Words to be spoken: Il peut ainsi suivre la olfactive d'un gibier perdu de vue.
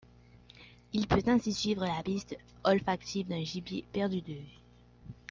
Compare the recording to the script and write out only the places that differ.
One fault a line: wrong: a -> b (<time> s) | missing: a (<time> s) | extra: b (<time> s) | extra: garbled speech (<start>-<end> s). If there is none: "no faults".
extra: piste (2.0 s)